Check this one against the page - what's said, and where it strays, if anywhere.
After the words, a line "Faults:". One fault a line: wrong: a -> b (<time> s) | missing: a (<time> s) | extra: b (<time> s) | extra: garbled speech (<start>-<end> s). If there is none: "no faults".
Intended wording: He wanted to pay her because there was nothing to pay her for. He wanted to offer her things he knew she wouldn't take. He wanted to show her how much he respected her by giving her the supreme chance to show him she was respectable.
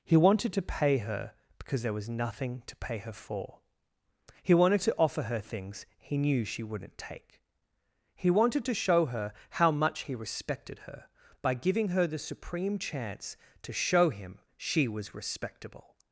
He wanted to pay her because there was nothing to pay her for. He wanted to offer her things he knew she wouldn't take. He wanted to show her how much he respected her by giving her the supreme chance to show him she was respectable.
Faults:
no faults